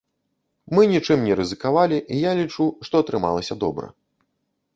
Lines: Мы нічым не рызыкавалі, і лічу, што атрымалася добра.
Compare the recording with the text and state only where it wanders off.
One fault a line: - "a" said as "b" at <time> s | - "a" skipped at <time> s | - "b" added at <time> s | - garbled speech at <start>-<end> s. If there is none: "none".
- "я" added at 2.2 s